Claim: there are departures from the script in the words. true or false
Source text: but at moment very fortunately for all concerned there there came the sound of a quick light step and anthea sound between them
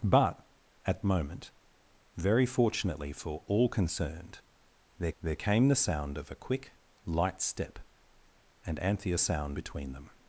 false